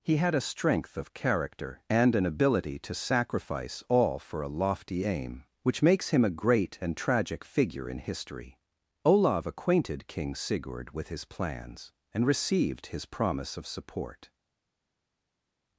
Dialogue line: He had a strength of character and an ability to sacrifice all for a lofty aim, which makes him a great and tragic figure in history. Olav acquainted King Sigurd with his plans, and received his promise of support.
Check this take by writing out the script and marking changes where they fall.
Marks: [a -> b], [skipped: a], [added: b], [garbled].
He had a strength of character and an ability to sacrifice all for a lofty aim, which makes him a great and tragic figure in history. Olav acquainted King Sigurd with his plans, and received his promise of support.